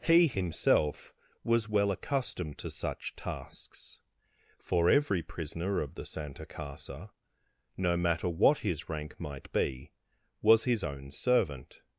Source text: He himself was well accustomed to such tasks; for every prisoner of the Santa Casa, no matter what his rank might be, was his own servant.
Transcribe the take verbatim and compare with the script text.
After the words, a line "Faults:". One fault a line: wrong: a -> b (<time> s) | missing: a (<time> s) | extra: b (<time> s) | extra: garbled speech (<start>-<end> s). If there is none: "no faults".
He himself was well accustomed to such tasks; for every prisoner of the Santa Casa, no matter what his rank might be, was his own servant.
Faults:
no faults